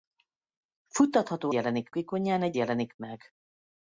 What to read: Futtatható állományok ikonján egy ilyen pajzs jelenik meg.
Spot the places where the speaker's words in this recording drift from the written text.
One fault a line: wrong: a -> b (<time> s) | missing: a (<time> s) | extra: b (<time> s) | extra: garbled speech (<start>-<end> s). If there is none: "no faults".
wrong: állományok -> jelenik (1.5 s)
missing: ilyen pajzs (2.6 s)